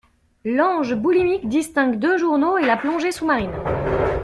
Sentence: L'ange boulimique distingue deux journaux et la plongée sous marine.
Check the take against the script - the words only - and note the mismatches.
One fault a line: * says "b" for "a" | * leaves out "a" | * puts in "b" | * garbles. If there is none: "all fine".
all fine